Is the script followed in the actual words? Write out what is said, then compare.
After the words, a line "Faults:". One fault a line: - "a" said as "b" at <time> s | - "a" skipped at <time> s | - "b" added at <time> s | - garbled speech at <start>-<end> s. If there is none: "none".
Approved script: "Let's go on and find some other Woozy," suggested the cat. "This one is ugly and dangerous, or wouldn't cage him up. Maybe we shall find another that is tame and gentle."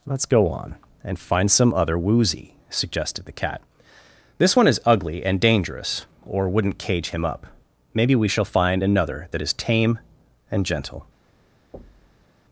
"Let's go on and find some other Woozy," suggested the cat. "This one is ugly and dangerous, or wouldn't cage him up. Maybe we shall find another that is tame and gentle."
Faults:
none